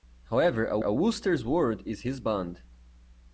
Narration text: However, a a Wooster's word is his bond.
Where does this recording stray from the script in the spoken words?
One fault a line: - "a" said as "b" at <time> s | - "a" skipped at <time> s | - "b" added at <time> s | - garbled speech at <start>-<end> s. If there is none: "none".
none